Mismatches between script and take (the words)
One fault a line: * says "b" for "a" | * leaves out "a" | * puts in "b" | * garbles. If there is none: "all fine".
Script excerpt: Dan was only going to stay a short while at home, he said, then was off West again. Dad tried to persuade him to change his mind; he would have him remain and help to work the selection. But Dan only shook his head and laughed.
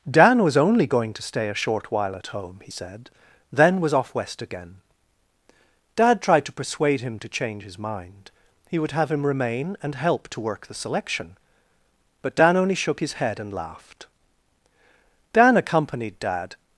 * puts in "Dan accompanied Dad"